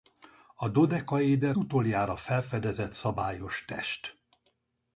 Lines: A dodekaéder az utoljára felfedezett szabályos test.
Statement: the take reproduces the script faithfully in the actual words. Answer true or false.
false